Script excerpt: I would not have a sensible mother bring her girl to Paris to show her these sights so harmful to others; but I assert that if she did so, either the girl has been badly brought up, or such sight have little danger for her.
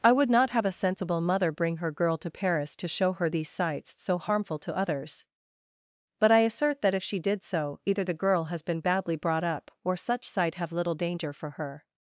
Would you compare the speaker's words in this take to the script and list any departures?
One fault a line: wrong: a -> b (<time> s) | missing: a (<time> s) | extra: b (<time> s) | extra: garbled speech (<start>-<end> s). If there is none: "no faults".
no faults